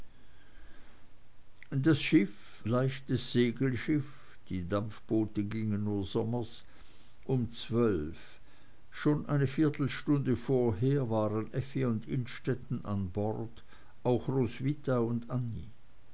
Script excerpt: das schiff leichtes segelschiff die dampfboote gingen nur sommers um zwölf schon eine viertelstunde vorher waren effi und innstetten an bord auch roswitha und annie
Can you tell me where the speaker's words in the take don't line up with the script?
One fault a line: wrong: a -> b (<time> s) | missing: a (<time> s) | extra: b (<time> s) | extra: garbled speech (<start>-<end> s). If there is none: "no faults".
no faults